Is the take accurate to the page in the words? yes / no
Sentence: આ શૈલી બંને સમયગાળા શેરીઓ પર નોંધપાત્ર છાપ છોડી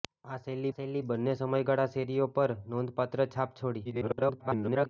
no